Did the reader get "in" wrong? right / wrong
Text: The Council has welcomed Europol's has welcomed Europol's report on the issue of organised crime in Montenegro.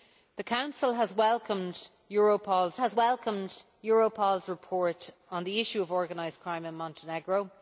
right